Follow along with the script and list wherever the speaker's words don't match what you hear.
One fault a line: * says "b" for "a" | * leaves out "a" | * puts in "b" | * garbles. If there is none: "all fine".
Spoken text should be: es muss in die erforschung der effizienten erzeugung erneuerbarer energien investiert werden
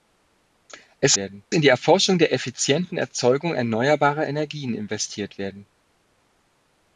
* says "werden" for "muss"